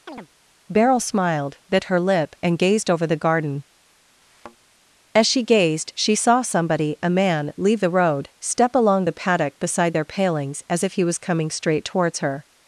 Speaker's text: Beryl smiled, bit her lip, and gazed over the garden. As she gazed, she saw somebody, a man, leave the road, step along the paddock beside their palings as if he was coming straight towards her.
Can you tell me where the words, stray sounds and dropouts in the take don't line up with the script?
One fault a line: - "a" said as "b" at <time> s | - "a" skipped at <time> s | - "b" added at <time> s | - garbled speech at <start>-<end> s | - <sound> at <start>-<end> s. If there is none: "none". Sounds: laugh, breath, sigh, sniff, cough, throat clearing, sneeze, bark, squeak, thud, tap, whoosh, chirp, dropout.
- chirp at 0.1-0.3 s
- thud at 4.2-4.6 s